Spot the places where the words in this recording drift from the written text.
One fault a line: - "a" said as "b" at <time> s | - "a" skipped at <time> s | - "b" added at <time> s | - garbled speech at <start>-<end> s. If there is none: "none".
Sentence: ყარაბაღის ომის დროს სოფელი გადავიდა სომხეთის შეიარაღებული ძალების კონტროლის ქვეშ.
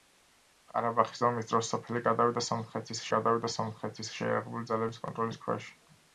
- "გადავიდა სომხეთის" added at 3.2 s